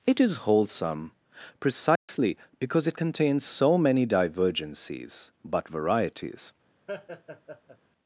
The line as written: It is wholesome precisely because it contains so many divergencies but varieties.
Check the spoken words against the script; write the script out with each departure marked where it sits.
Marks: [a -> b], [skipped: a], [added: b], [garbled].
It is wholesome precisely because it contains so many divergencies but varieties.